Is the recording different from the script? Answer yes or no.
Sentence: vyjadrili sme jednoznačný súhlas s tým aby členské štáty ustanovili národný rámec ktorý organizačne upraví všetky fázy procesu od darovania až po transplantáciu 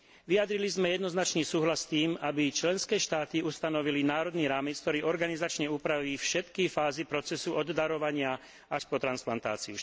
no